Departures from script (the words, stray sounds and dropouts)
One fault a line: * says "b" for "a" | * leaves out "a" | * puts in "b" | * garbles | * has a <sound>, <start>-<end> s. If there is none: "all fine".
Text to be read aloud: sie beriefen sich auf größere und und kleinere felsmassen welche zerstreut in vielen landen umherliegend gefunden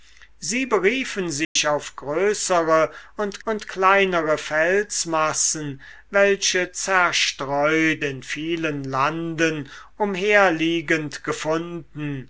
* has a dropout, 1.4-1.6 s